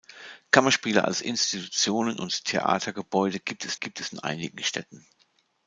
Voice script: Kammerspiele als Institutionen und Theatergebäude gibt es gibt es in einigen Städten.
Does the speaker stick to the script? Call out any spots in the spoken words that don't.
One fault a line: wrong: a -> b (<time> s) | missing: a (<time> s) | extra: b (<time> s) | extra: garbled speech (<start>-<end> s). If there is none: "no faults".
no faults